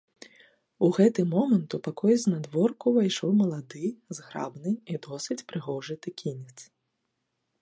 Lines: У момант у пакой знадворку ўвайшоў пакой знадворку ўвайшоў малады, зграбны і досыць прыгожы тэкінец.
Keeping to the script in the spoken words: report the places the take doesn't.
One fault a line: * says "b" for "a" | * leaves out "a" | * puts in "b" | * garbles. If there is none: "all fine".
* puts in "гэты"
* leaves out "пакой знадворку ўвайшоў"